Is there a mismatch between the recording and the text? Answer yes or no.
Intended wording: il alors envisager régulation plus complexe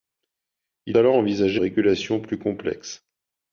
no